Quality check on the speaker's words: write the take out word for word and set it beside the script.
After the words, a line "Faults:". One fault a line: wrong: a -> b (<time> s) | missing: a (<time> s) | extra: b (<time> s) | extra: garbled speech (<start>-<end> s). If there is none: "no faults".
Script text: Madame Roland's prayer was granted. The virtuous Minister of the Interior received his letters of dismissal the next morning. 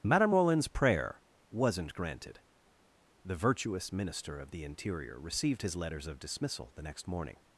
Madame Roland's prayer wasn't granted. The virtuous Minister of the Interior received his letters of dismissal the next morning.
Faults:
wrong: was -> wasn't (1.5 s)